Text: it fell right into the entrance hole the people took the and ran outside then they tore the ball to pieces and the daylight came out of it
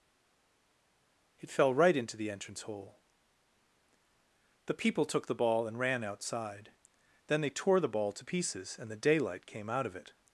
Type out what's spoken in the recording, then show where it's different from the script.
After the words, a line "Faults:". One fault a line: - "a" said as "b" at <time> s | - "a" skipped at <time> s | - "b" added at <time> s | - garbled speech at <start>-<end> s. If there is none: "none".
it fell right into the entrance hole the people took the ball and ran outside then they tore the ball to pieces and the daylight came out of it
Faults:
- "ball" added at 5.3 s